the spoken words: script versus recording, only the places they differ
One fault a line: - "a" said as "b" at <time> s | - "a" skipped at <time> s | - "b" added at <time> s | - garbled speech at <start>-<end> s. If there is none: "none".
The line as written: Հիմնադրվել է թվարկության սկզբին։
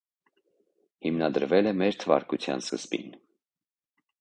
- "մեր" added at 1.8 s